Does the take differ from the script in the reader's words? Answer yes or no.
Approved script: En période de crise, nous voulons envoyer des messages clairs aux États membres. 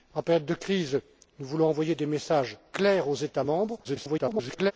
yes